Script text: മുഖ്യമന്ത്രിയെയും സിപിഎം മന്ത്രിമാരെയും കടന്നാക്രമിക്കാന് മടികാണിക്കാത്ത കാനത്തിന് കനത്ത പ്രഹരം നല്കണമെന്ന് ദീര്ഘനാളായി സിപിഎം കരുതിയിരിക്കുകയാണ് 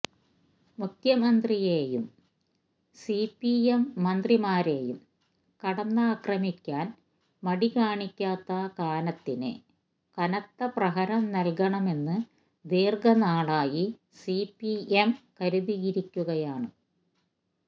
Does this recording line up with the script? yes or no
yes